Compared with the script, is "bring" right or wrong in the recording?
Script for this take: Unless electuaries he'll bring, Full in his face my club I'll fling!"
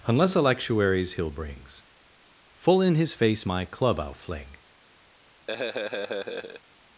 wrong